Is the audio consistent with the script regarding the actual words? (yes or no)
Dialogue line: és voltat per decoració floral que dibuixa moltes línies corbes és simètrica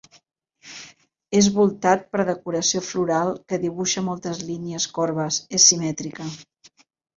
yes